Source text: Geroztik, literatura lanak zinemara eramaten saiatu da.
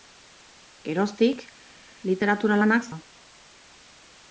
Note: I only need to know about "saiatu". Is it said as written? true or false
false